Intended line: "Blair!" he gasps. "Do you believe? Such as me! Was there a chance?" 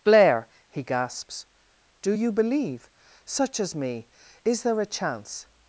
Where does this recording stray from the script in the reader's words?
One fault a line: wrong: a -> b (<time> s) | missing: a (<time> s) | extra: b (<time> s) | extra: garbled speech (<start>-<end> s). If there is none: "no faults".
wrong: Was -> Is (4.4 s)